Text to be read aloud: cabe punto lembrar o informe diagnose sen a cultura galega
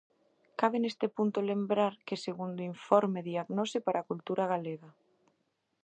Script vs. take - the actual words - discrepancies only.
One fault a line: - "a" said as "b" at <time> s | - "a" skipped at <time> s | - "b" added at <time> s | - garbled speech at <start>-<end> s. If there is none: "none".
- "neste" added at 0.8 s
- "que segundo" added at 2.1 s
- "sen" said as "para" at 3.9 s